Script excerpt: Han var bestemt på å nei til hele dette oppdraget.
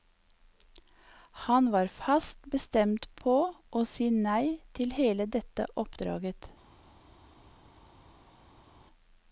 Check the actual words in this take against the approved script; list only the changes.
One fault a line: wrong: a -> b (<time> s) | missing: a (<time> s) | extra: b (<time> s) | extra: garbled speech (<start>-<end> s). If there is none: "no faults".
extra: fast (1.9 s)
extra: si (3.9 s)